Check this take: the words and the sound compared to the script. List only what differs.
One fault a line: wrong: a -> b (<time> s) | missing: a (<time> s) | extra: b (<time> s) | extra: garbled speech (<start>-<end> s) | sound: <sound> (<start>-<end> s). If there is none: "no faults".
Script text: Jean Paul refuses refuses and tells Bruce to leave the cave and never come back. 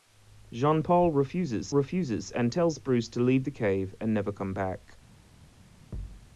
sound: thud (5.9-6.3 s)